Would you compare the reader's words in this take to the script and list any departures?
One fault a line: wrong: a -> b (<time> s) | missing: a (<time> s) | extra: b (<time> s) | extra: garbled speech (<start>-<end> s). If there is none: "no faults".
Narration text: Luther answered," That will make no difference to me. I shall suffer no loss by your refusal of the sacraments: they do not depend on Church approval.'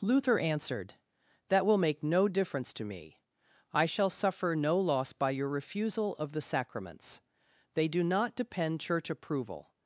missing: on (8.8 s)